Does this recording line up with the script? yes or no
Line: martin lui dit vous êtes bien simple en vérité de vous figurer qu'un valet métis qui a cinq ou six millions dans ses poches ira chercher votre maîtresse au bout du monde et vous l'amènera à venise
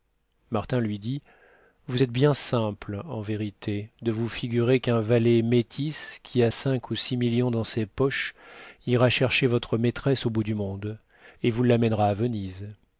yes